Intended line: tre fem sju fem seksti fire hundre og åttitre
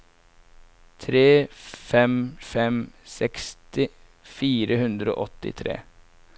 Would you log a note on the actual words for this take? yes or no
yes